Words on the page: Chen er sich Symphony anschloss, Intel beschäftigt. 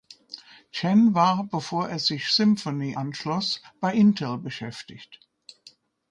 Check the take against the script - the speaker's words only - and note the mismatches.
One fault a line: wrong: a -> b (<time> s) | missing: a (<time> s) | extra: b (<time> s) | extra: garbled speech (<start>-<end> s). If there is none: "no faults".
extra: war bevor (1.1 s)
extra: bei (3.8 s)